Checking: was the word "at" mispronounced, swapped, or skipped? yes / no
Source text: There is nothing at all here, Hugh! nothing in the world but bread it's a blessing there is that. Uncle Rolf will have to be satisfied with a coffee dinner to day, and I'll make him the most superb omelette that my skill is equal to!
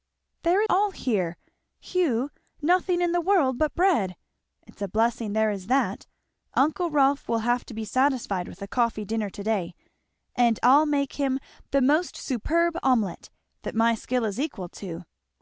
yes